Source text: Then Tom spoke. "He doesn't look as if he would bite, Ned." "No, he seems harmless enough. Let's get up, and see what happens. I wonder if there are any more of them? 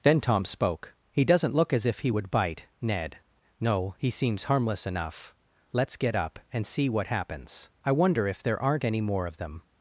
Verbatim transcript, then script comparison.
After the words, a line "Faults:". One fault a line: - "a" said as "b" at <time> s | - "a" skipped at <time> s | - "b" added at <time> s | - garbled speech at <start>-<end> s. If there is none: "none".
Then Tom spoke. "He doesn't look as if he would bite, Ned." "No, he seems harmless enough. Let's get up, and see what happens. I wonder if there aren't any more of them?
Faults:
- "are" said as "aren't" at 8.6 s